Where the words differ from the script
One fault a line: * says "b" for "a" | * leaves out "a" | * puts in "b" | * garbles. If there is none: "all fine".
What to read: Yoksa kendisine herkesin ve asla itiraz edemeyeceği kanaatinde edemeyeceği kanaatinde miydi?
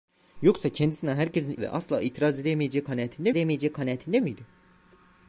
all fine